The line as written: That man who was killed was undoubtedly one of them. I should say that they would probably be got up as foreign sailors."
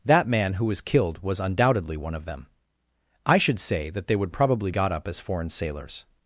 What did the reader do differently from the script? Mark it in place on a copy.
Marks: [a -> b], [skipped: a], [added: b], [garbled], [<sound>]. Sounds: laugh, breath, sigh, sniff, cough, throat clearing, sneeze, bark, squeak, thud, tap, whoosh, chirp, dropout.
That man who was killed was undoubtedly one of them. I should say that they would probably [skipped: be] got up as foreign sailors."